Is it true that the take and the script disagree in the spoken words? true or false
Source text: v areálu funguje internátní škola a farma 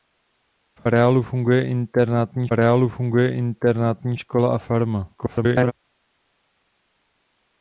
true